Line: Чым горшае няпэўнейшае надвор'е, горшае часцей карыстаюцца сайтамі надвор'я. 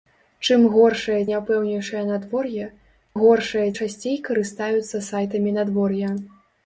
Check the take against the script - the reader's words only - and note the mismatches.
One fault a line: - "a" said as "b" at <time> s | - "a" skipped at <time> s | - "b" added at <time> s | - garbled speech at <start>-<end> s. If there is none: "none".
none